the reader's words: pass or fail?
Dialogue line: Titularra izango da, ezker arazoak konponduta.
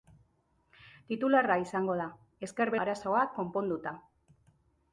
pass